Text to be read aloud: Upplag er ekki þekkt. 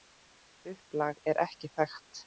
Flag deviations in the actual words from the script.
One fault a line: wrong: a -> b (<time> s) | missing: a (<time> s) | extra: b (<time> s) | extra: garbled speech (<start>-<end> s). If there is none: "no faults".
no faults